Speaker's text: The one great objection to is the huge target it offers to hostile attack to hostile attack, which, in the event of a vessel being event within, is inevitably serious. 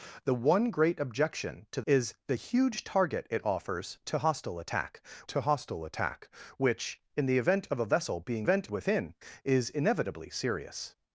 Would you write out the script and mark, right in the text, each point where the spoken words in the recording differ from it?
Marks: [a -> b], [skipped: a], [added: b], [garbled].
The one great objection to is the huge target it offers to hostile attack to hostile attack, which, in the event of a vessel being event within, is inevitably serious.